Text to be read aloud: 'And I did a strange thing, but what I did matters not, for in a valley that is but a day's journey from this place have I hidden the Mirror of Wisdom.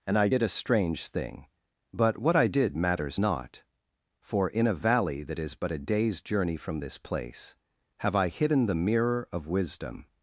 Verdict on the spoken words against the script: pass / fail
pass